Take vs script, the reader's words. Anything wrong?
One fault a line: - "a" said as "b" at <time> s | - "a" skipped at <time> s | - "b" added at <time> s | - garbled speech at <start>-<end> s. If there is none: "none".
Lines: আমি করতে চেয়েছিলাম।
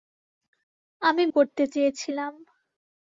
none